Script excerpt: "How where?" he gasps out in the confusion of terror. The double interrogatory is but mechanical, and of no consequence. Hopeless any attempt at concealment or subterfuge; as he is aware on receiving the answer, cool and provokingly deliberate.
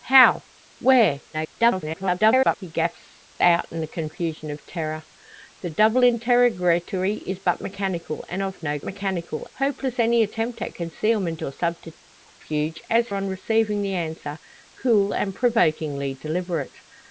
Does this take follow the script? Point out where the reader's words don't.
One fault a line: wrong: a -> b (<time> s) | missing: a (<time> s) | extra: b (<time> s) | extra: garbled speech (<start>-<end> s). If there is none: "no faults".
extra: garbled speech (1.3-2.6 s)
wrong: consequence -> mechanical (8.8 s)
missing: he is aware (13.1 s)